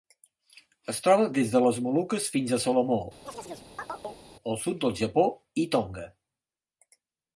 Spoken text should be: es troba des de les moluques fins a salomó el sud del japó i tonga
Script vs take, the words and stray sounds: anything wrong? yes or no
yes